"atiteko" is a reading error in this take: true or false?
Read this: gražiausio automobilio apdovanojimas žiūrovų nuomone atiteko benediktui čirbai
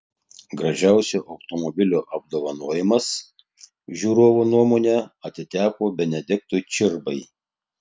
false